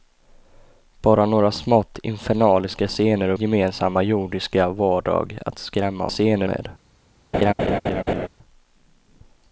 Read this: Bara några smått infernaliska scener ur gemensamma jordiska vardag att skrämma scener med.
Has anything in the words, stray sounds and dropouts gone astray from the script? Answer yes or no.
yes